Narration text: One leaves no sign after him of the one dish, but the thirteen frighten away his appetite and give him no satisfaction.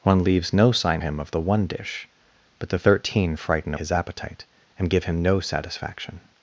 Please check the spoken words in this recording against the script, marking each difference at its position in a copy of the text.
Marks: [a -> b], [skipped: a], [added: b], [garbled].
One leaves no sign [skipped: after] him of the one dish, but the thirteen frighten [skipped: away] his appetite and give him no satisfaction.